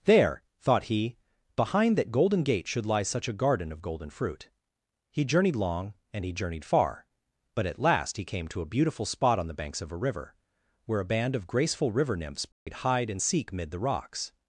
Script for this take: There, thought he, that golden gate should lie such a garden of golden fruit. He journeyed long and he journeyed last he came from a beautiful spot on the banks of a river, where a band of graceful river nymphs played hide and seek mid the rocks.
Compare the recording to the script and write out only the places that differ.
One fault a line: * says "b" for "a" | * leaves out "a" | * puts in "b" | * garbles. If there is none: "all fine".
* puts in "behind"
* puts in "far but at"
* says "to" for "from"